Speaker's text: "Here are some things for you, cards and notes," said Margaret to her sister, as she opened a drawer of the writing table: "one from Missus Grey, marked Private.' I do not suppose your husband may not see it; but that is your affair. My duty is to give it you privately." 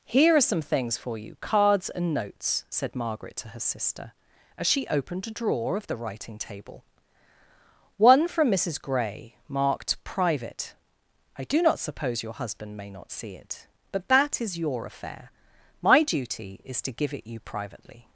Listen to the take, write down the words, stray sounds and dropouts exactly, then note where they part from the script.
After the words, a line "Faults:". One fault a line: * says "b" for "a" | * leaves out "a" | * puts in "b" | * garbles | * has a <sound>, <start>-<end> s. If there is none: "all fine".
"Here are some things for you, cards and notes," said Margaret to her sister, as she opened a drawer of the writing table: "one from Missus Grey, marked Private.' I do not suppose your husband may not see it; but that is your affair. My duty is to give it you privately."
Faults:
all fine